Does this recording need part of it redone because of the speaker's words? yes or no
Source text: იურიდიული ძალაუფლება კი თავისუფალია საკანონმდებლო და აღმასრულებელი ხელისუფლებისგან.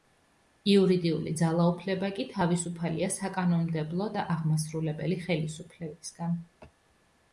no